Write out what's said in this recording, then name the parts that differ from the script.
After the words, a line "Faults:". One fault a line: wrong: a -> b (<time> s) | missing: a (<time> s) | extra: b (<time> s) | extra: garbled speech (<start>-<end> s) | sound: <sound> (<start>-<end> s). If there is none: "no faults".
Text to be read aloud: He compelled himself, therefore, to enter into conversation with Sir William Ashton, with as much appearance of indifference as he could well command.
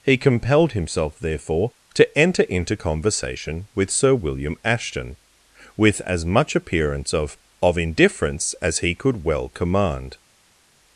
He compelled himself, therefore, to enter into conversation with Sir William Ashton, with as much appearance of of indifference as he could well command.
Faults:
extra: of (7.6 s)